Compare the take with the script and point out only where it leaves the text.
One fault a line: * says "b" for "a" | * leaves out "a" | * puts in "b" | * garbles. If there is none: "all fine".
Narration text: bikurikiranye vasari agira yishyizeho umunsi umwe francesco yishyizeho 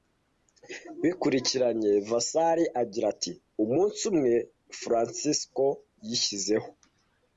* says "ati" for "yishyizeho"